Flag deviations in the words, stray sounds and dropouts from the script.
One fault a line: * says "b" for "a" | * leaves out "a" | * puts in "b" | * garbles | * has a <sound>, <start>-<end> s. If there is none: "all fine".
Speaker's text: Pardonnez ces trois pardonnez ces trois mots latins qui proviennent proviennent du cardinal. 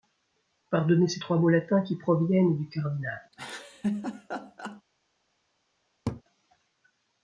* leaves out "pardonnez ces trois"
* leaves out "proviennent"
* has a laugh, 3.3-4.8 s
* has a laugh, 6.1-6.2 s